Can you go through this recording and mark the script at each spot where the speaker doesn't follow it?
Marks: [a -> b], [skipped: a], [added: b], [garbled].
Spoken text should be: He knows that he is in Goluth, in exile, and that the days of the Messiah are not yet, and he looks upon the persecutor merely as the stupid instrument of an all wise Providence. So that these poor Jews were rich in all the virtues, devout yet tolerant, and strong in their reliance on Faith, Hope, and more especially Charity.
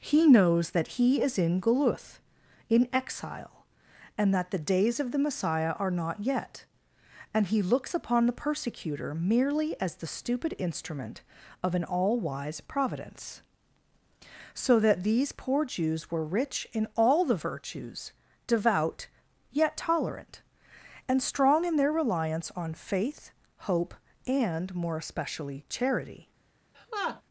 He knows that he is in Goluth, in exile, and that the days of the Messiah are not yet, and he looks upon the persecutor merely as the stupid instrument of an all wise Providence. So that these poor Jews were rich in all the virtues, devout yet tolerant, and strong in their reliance on Faith, Hope, and more especially Charity.